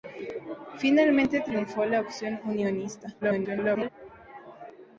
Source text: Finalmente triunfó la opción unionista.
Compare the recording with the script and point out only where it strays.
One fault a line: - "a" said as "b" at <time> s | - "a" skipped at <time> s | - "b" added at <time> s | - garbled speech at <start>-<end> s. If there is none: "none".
- garbled speech at 3.2-3.9 s